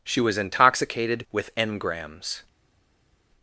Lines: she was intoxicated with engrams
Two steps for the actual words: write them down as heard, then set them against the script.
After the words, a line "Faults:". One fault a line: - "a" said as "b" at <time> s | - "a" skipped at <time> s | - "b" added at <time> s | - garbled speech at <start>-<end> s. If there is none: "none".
she was intoxicated with engrams
Faults:
none